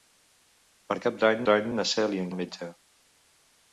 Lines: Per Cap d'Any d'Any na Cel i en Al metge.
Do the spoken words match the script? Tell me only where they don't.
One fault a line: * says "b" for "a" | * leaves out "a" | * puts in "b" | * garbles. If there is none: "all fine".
all fine